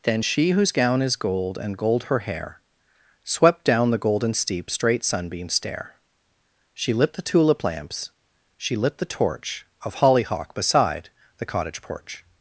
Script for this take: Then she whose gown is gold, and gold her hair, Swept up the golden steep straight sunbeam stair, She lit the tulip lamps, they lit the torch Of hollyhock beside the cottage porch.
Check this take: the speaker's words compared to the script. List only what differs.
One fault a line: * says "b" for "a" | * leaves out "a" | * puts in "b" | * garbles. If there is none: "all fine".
* says "down" for "up"
* says "she" for "they"